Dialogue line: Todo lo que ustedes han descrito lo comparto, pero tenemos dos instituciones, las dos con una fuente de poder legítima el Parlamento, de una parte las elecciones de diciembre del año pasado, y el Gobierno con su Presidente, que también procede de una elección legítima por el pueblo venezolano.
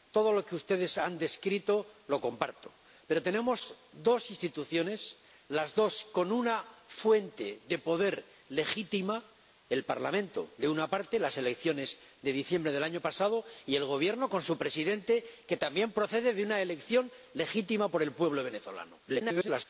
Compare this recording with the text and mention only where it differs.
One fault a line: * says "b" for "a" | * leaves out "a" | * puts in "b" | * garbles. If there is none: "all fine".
* garbles